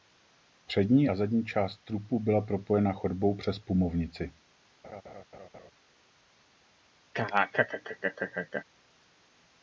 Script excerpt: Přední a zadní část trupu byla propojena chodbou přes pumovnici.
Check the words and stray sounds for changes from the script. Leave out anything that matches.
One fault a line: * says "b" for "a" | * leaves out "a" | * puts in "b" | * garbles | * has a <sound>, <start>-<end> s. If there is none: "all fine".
* has a laugh, 4.8-5.7 s
* has a laugh, 7.1-8.6 s